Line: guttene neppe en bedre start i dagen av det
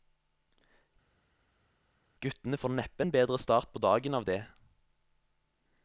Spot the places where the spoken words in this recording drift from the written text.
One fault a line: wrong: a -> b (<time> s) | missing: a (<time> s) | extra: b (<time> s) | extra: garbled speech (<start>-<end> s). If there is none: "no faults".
extra: får (2.6 s)
wrong: i -> på (3.7 s)